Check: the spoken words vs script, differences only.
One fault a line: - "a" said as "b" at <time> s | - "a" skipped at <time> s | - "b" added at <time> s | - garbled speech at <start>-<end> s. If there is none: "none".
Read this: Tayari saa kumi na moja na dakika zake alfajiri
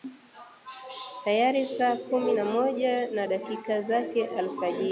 none